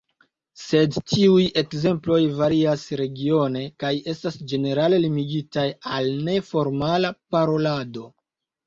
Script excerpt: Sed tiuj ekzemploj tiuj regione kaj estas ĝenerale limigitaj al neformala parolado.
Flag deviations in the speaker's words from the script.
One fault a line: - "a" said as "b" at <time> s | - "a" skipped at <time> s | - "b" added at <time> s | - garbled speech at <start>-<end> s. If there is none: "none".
- "tiuj" said as "varias" at 2.4 s